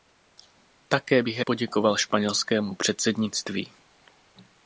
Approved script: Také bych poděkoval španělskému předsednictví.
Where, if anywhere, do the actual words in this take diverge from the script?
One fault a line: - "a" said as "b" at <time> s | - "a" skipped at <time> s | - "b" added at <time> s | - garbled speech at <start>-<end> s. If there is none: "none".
none